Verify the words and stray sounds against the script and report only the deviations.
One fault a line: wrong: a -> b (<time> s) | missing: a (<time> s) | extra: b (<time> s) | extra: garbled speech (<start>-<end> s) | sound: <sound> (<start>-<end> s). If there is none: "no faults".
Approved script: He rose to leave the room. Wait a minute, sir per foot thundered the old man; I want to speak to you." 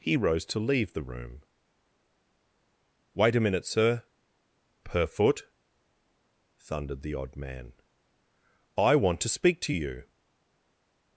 wrong: old -> odd (7.1 s)